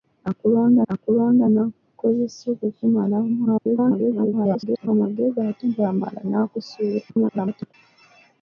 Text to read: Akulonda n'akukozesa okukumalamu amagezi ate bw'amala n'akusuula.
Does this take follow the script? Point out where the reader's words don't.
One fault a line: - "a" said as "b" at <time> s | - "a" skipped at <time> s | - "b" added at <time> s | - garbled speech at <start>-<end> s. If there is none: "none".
- "akulonda" added at 0.9 s
- garbled speech at 3.4-4.9 s
- garbled speech at 7.1-7.7 s